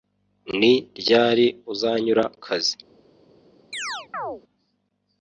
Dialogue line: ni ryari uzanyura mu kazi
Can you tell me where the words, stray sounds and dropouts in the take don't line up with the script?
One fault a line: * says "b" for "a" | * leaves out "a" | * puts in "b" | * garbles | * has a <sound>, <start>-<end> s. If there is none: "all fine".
* leaves out "mu"
* has a chirp, 3.7-4.4 s